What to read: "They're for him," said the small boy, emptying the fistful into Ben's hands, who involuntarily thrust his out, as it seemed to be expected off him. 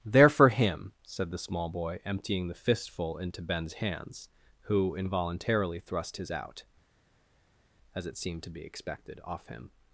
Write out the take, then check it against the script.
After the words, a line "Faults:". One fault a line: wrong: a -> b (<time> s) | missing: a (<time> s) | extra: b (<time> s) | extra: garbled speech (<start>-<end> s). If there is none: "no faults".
"They're for him," said the small boy, emptying the fistful into Ben's hands, who involuntarily thrust his out, as it seemed to be expected off him.
Faults:
no faults